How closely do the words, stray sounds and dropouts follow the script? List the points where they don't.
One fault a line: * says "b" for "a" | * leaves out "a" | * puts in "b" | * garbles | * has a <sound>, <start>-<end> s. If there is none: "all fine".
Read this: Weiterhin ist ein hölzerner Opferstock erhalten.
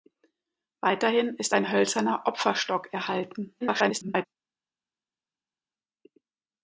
* garbles